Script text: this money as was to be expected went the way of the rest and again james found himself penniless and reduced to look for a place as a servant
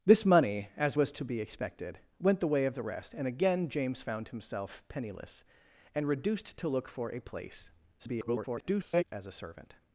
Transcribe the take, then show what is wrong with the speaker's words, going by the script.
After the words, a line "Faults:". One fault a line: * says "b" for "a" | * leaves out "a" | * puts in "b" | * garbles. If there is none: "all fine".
this money as was to be expected went the way of the rest and again james found himself penniless and reduced to look for a place [garbled] as a servant
Faults:
* garbles